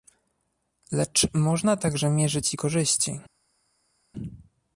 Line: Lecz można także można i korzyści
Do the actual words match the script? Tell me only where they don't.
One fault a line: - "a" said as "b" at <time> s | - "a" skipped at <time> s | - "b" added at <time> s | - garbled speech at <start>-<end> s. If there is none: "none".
- "można" said as "mierzyć" at 2.1 s